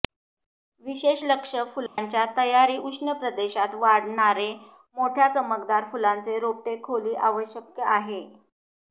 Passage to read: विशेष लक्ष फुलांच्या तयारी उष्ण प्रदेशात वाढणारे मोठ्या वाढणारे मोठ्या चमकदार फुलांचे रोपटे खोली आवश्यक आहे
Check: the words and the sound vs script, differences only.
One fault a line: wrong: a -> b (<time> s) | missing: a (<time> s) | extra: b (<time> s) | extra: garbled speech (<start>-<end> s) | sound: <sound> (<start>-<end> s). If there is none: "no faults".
sound: dropout (1.9-2.0 s)
missing: वाढणारे मोठ्या (5.3 s)